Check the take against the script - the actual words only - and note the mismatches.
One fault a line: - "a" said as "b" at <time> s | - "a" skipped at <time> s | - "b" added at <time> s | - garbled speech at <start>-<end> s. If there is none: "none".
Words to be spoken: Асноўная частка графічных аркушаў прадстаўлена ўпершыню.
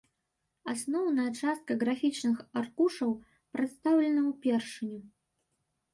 none